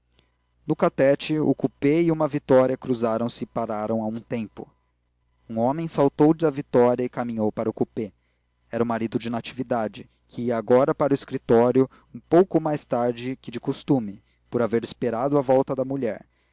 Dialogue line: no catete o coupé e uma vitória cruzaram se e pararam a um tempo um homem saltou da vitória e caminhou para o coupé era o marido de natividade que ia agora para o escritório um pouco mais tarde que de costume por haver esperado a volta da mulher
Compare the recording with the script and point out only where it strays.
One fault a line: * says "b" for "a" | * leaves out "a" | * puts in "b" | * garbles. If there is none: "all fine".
all fine